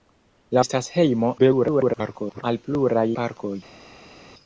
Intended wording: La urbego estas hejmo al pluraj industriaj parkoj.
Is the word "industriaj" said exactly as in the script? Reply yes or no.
no